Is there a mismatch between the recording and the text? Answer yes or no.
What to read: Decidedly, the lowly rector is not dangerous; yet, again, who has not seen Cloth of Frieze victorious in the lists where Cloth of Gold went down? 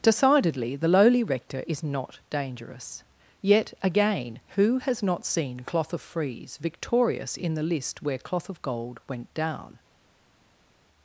yes